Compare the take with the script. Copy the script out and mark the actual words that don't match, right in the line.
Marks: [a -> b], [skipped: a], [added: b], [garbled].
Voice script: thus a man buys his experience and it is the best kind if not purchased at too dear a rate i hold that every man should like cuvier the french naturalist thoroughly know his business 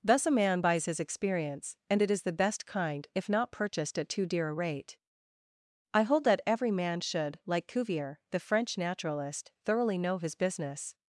thus a man buys his experience and it is the best kind if not purchased at too dear a rate i hold that every man should like cuvier the french naturalist thoroughly know his business